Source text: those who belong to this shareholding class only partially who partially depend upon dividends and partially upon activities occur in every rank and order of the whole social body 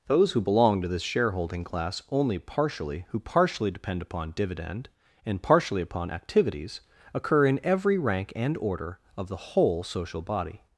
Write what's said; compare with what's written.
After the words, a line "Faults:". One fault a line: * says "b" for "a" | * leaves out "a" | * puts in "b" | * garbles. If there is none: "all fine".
those who belong to this shareholding class only partially who partially depend upon dividend and partially upon activities occur in every rank and order of the whole social body
Faults:
* says "dividend" for "dividends"